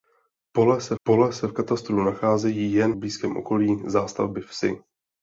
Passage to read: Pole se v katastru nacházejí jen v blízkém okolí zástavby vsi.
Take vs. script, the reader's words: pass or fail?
fail